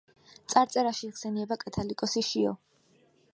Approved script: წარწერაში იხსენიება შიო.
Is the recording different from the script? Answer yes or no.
yes